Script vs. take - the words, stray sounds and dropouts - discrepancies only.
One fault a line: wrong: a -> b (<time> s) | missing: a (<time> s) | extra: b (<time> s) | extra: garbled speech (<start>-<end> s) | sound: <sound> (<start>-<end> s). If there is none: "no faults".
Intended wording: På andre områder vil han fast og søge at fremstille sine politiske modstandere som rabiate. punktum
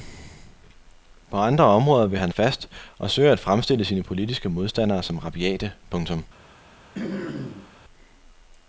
sound: throat clearing (6.9-7.7 s)